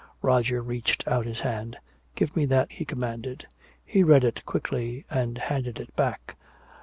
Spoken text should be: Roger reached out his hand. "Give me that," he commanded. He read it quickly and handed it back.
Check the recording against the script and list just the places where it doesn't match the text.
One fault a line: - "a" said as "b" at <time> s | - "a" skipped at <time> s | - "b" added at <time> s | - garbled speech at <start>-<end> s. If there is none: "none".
none